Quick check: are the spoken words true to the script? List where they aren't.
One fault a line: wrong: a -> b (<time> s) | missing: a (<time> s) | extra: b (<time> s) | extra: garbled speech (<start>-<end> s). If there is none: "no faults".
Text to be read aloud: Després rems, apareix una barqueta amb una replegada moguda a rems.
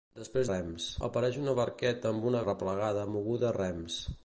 no faults